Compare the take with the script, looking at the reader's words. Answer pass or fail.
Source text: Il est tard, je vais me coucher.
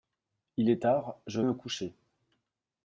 fail